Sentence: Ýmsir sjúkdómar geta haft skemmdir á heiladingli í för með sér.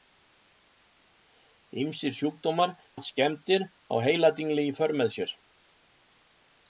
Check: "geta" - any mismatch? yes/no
yes